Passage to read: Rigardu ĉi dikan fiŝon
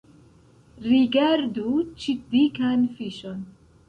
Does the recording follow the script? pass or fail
pass